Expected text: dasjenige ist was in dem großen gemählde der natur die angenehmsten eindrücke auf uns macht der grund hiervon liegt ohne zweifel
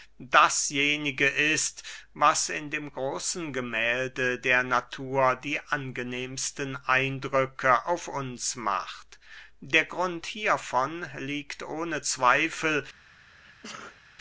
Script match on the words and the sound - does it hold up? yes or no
no